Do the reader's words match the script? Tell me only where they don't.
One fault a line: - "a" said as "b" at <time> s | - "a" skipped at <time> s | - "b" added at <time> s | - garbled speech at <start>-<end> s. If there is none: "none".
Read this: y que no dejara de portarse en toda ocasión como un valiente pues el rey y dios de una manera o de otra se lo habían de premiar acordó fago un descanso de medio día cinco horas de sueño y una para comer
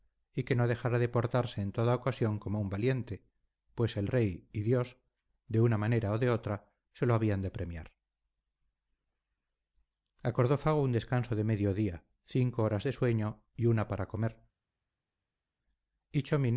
none